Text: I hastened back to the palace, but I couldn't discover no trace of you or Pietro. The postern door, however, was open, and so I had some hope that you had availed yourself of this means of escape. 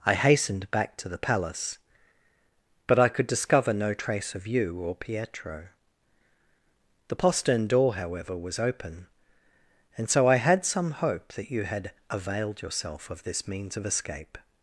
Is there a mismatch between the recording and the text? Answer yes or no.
yes